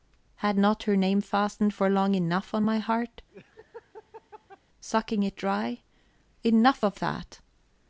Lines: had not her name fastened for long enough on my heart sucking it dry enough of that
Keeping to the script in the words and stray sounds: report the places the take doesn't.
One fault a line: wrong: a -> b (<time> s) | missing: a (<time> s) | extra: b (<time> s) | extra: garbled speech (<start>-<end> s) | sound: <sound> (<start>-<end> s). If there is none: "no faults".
sound: laugh (3.3-4.6 s)